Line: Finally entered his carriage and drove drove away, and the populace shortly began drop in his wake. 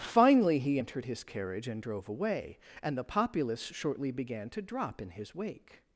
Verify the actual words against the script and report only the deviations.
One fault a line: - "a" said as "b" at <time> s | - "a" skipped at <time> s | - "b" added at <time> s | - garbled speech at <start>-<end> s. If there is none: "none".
- "he" added at 0.6 s
- "drove" skipped at 2.1 s
- "to" added at 4.5 s